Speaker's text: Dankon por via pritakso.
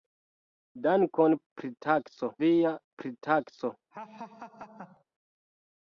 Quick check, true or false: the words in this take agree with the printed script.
false